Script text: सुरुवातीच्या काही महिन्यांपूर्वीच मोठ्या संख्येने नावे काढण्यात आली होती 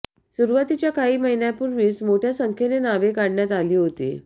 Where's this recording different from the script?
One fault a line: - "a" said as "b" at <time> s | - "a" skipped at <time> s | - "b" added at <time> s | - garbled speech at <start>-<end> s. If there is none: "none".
none